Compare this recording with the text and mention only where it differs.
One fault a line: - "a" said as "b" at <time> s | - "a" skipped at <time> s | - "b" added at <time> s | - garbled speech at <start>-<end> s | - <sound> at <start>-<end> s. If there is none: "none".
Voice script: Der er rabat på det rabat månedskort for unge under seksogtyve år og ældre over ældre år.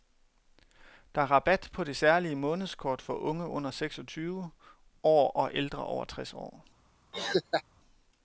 - "rabat" said as "særlige" at 1.9 s
- "ældre" said as "tres" at 6.0 s
- laugh at 7.1-7.6 s